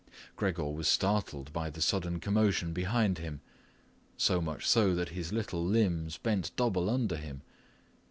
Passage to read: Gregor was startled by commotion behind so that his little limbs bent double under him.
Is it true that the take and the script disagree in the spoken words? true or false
true